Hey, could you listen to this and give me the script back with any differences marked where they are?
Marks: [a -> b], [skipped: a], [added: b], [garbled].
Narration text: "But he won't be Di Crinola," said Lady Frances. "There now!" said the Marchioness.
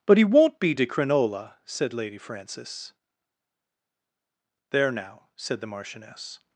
"But he won't be Di Crinola," said Lady Frances. "There now!" said the Marchioness.